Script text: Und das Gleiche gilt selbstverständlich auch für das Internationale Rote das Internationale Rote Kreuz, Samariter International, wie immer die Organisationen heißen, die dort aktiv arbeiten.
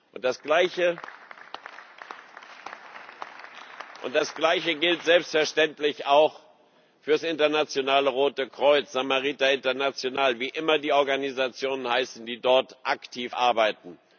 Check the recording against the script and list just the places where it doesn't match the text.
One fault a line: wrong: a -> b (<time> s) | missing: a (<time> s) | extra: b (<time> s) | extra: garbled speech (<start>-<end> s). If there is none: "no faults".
missing: das Internationale Rote (8.5 s)